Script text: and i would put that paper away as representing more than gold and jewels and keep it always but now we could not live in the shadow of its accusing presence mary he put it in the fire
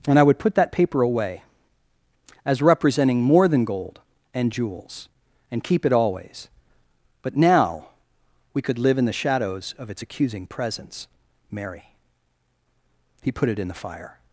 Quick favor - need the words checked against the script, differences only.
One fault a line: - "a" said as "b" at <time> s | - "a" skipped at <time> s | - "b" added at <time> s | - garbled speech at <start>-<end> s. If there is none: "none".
- "not" skipped at 8.8 s
- "shadow" said as "shadows" at 9.1 s